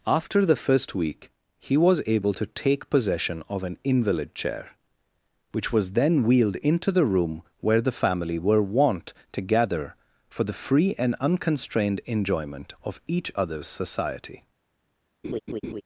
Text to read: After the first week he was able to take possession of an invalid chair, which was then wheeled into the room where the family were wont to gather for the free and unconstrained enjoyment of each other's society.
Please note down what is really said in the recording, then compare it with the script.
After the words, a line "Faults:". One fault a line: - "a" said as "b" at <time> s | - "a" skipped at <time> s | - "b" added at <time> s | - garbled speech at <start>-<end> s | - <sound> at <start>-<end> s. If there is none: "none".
After the first week he was able to take possession of an invalid chair, which was then wheeled into the room where the family were wont to gather for the free and unconstrained enjoyment of each other's society.
Faults:
- laugh at 15.2-15.8 s